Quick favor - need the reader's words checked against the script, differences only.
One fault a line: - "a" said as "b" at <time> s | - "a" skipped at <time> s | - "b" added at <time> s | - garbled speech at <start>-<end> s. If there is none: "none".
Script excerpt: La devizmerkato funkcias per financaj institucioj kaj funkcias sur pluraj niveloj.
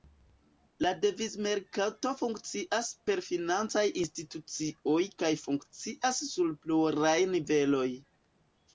none